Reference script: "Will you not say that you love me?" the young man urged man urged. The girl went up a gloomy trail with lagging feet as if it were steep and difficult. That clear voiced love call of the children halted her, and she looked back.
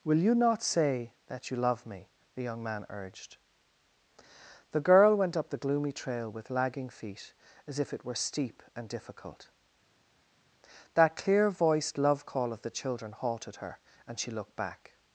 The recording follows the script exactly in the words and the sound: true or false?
false